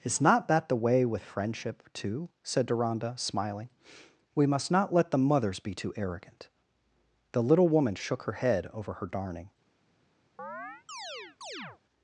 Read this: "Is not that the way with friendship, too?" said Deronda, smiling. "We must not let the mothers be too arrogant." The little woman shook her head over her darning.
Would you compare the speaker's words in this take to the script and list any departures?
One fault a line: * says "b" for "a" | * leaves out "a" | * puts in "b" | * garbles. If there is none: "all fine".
all fine